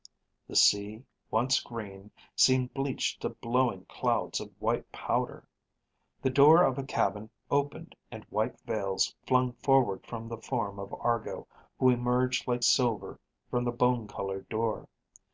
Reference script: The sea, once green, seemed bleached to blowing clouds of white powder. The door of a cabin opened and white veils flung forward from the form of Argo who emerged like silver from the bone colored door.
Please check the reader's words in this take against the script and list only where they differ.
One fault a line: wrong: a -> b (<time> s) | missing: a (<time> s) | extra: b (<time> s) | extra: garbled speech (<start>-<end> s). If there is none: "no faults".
no faults